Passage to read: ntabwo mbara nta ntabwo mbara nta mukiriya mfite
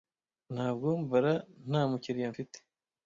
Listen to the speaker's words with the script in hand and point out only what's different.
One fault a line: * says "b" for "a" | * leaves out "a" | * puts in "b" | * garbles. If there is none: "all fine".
* leaves out "ntabwo mbara nta"